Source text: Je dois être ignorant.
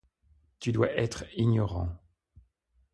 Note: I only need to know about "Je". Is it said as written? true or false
false